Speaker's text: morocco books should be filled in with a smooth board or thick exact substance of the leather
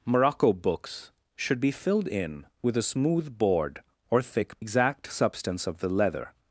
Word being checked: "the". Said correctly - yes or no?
yes